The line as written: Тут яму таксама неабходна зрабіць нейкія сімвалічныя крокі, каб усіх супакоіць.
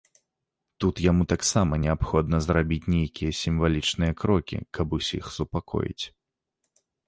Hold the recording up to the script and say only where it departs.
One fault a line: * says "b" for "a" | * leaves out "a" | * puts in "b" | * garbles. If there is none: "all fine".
all fine